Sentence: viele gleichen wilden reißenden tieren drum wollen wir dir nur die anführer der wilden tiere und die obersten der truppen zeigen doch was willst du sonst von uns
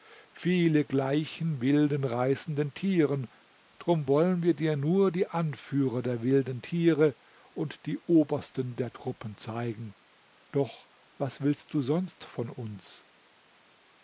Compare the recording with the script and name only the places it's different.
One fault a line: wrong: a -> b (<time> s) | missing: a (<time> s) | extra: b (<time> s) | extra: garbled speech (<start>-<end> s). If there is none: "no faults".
no faults